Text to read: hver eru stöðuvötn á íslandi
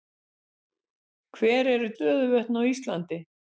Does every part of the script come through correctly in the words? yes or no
yes